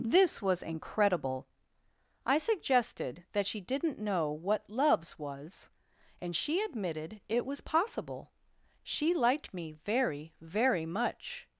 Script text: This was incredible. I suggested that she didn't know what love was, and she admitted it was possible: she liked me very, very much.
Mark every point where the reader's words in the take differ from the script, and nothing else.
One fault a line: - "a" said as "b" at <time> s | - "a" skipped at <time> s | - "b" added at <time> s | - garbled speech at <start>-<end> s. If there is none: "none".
- "love" said as "loves" at 4.7 s